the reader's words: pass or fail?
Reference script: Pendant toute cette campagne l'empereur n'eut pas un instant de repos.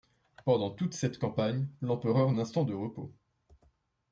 fail